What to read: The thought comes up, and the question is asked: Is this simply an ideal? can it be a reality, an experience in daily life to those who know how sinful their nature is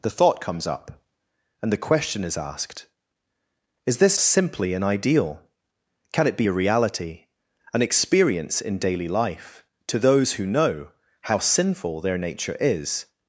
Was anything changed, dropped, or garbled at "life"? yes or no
no